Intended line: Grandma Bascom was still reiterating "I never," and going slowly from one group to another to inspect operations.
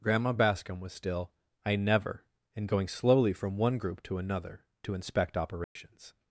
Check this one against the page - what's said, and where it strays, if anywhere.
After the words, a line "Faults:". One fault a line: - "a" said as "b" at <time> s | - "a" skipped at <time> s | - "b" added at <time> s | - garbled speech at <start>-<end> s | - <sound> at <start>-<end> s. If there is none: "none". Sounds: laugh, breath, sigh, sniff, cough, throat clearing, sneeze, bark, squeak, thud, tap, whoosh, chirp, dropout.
Grandma Bascom was still "I never," and going slowly from one group to another to inspect operations.
Faults:
- "reiterating" skipped at 1.3 s
- dropout at 5.6-5.8 s